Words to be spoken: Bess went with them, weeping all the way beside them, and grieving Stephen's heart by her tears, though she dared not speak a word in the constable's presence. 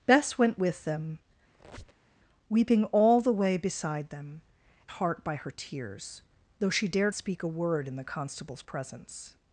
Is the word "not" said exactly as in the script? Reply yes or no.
no